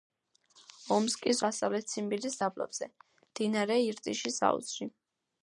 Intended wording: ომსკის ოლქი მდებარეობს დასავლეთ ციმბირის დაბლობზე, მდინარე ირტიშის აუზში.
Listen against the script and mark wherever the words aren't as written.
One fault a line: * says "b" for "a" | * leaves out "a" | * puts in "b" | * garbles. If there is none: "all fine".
* leaves out "ოლქი მდებარეობს"